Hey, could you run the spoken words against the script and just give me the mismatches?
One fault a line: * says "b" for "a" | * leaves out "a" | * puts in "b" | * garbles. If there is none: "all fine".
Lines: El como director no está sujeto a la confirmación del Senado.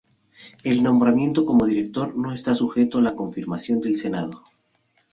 * puts in "nombramiento"